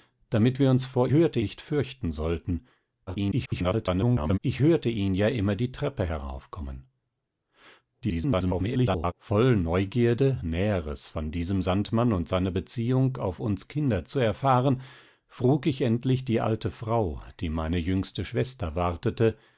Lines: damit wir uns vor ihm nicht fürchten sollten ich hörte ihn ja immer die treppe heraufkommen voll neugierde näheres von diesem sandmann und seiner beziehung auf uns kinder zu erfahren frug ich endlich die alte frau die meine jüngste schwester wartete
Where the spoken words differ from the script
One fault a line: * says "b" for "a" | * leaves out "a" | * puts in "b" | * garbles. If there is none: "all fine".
* says "hörte" for "ihm"
* garbles
* garbles